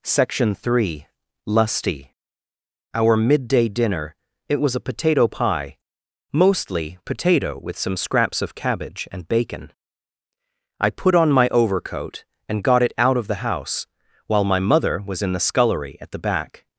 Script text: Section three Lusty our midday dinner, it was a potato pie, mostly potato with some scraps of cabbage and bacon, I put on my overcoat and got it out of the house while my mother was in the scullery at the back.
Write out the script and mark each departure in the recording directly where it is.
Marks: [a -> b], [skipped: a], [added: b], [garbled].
Section three Lusty our midday dinner, it was a potato pie, mostly potato with some scraps of cabbage and bacon, I put on my overcoat and got it out of the house while my mother was in the scullery at the back.